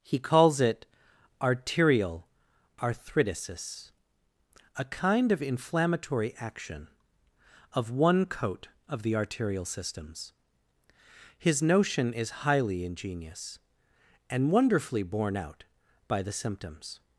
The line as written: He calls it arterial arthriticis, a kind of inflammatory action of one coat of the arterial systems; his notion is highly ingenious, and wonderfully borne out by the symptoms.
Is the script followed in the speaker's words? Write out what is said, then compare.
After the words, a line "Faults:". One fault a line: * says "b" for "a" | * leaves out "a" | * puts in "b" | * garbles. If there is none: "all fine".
He calls it arterial arthriticis, a kind of inflammatory action of one coat of the arterial systems; his notion is highly ingenious, and wonderfully borne out by the symptoms.
Faults:
all fine